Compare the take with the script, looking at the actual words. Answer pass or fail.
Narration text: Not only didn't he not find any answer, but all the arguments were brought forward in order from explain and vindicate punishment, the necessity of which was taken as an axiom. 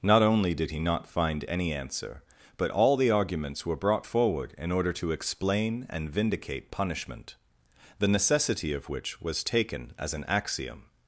fail